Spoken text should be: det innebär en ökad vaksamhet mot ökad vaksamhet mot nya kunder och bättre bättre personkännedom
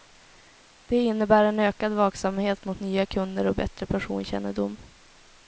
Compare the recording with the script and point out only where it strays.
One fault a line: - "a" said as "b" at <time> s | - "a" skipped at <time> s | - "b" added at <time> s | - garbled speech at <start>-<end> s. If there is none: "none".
- "ökad vaksamhet mot" skipped at 2.8 s
- "bättre" skipped at 3.9 s